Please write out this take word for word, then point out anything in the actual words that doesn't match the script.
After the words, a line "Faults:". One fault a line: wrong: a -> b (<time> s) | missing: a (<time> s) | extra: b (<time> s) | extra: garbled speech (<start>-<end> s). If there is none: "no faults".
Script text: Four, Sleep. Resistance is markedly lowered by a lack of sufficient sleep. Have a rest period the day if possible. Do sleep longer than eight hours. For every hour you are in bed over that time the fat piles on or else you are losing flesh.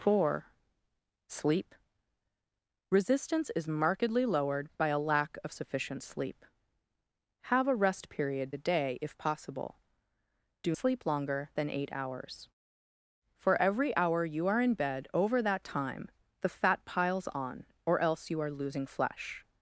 Four, Sleep. Resistance is markedly lowered by a lack of sufficient sleep. Have a rest period the day if possible. Do sleep longer than eight hours. For every hour you are in bed over that time the fat piles on or else you are losing flesh.
Faults:
no faults